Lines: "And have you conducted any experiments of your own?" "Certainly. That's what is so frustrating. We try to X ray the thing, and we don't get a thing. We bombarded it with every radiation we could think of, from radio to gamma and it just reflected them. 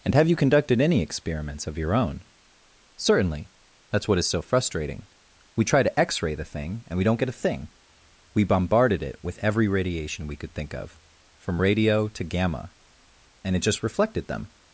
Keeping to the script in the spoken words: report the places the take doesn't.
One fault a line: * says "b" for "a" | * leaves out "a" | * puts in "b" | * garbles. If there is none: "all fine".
all fine